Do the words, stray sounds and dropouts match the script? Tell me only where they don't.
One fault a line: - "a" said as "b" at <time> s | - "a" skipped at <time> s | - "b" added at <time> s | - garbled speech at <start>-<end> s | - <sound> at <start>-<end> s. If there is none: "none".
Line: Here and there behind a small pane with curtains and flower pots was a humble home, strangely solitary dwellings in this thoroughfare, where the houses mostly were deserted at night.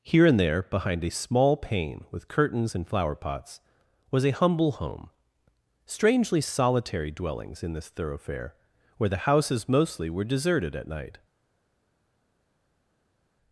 none